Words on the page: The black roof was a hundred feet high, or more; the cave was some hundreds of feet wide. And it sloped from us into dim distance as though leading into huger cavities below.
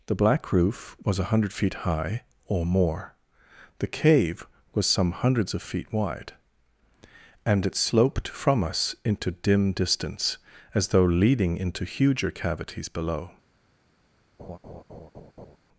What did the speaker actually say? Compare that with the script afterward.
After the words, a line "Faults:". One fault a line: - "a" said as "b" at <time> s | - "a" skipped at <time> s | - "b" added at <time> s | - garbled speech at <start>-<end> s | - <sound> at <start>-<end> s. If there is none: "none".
The black roof was a hundred feet high, or more; the cave was some hundreds of feet wide. And it sloped from us into dim distance as though leading into huger cavities below.
Faults:
- laugh at 14.4-15.6 s